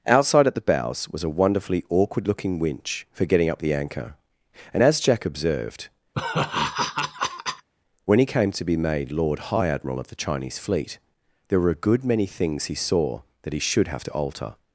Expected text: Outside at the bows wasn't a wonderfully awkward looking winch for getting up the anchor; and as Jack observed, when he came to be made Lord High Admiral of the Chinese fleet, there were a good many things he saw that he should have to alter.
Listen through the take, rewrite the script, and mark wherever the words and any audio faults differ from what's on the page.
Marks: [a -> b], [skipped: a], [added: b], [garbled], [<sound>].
Outside at the bows [wasn't -> was] a wonderfully awkward looking winch for getting up the anchor; and as Jack observed, [laugh] when he came to be made Lord High Admiral of the Chinese fleet, there were a good many things he saw that he should have to alter.